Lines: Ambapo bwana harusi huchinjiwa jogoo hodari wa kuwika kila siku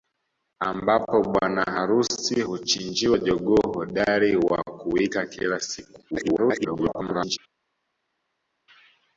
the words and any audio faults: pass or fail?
fail